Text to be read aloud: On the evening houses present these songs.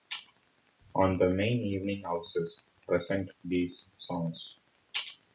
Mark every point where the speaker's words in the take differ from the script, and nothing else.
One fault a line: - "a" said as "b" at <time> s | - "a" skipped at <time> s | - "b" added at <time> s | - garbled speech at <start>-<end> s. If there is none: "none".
- "main" added at 1.3 s